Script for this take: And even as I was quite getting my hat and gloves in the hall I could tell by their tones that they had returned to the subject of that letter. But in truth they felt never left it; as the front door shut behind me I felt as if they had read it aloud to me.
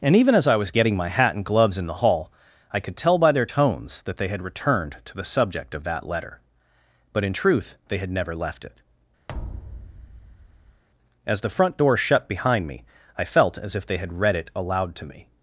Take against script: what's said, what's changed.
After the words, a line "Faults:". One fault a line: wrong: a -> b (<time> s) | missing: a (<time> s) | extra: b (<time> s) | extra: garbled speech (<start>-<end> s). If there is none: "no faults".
And even as I was getting my hat and gloves in the hall I could tell by their tones that they had returned to the subject of that letter. But in truth they had never left it; as the front door shut behind me I felt as if they had read it aloud to me.
Faults:
missing: quite (0.7 s)
wrong: felt -> had (8.0 s)